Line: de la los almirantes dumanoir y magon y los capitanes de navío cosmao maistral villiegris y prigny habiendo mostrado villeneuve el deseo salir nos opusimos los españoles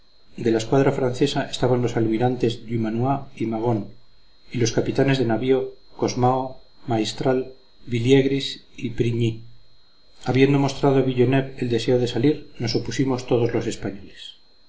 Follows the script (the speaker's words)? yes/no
no